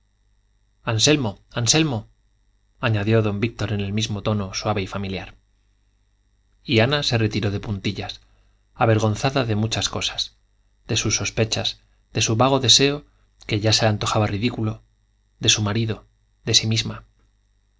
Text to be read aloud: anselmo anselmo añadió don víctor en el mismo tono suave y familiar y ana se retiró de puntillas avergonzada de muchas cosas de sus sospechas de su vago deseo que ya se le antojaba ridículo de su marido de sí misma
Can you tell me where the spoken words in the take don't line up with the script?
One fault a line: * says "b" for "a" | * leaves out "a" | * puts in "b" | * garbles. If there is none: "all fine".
all fine